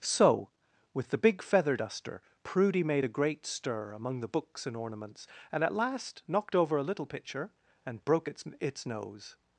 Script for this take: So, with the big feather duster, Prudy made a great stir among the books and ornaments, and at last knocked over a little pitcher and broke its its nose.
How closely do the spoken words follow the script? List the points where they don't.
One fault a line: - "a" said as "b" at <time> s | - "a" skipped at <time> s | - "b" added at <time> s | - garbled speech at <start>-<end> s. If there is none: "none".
none